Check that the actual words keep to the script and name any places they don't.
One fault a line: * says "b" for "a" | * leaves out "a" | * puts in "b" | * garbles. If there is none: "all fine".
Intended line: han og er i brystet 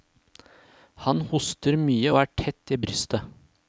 * puts in "hoster mye"
* puts in "tett"